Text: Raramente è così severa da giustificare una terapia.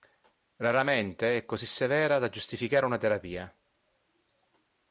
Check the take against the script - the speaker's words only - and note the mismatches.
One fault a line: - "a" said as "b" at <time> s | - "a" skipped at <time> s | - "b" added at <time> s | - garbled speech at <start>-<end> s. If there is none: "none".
none